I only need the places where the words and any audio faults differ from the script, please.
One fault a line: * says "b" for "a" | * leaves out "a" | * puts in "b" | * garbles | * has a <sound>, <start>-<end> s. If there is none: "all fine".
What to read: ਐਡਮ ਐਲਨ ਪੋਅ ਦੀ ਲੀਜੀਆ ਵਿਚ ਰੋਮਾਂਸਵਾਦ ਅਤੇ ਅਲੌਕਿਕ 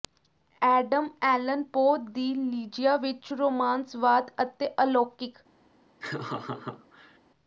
* has a laugh, 6.0-7.2 s